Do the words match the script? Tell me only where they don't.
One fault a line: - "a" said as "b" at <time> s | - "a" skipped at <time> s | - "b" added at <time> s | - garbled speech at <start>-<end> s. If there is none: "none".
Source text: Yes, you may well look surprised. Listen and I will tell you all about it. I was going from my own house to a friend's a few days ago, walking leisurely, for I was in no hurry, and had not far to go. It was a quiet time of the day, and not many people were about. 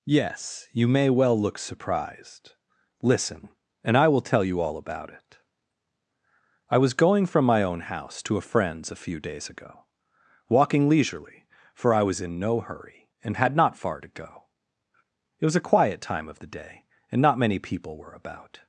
none